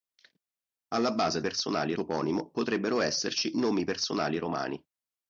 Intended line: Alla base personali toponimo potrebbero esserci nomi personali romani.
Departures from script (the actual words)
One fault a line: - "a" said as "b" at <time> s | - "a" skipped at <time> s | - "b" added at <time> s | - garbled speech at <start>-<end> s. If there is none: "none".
none